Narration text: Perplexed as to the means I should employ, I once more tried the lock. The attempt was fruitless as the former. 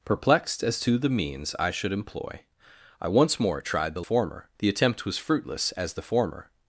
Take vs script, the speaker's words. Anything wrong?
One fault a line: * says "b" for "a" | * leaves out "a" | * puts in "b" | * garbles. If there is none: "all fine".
* says "former" for "lock"